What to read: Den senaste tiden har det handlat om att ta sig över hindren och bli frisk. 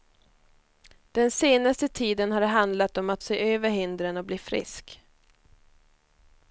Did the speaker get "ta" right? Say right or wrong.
wrong